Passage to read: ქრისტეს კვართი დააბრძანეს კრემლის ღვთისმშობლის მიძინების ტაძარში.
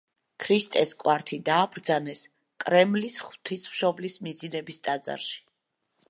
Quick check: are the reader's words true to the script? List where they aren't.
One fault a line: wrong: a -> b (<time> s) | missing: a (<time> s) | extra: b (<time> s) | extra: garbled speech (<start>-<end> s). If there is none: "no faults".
no faults